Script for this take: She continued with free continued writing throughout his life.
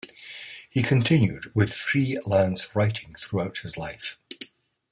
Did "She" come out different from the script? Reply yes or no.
yes